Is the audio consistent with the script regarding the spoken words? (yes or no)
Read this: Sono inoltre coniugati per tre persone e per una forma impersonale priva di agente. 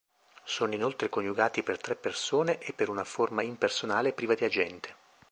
yes